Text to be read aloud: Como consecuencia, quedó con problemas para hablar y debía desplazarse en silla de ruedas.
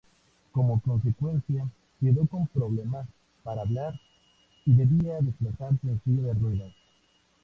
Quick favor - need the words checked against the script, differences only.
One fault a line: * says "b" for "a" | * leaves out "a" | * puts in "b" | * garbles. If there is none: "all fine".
all fine